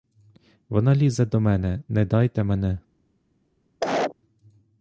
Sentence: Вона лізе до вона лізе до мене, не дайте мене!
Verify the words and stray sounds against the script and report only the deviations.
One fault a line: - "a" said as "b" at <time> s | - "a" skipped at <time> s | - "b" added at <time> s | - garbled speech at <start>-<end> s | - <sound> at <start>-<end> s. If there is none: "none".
- "вона лізе до" skipped at 1.4 s
- cough at 3.8-4.2 s